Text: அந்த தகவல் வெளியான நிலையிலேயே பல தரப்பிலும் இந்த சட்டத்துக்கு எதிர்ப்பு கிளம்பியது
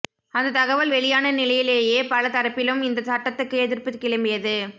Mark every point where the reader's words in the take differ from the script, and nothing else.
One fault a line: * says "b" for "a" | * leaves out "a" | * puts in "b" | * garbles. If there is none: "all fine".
all fine